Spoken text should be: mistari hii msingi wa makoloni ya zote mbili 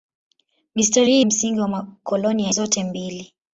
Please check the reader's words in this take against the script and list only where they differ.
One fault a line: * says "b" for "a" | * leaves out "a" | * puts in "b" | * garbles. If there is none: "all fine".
all fine